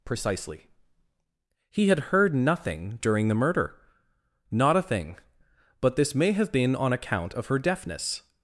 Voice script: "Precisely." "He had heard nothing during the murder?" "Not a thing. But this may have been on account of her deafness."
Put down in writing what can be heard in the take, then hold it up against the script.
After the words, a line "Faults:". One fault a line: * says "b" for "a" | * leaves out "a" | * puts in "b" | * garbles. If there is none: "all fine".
"Precisely." "He had heard nothing during the murder?" "Not a thing. But this may have been on account of her deafness."
Faults:
all fine